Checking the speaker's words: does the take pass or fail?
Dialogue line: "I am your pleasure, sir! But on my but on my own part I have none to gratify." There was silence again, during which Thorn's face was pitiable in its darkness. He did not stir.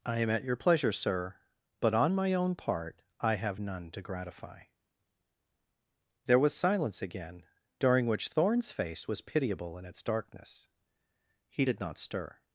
fail